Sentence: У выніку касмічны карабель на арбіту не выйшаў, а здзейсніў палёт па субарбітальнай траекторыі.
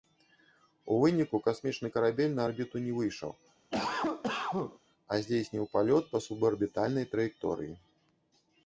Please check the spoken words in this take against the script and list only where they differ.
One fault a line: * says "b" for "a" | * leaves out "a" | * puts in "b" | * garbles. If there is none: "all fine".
all fine